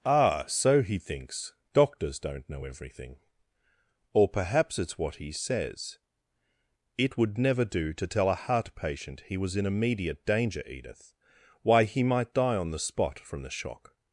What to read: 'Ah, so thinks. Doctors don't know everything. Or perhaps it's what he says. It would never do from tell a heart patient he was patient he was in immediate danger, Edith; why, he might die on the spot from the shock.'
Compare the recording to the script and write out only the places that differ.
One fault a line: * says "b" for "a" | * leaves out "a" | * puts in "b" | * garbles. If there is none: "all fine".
* puts in "he"
* says "to" for "from"
* leaves out "patient he was"